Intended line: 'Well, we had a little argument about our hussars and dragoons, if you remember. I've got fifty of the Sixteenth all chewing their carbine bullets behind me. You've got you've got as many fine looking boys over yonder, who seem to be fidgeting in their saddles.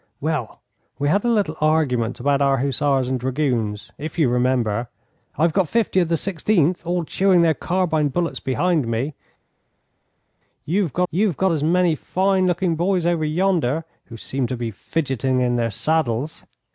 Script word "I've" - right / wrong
right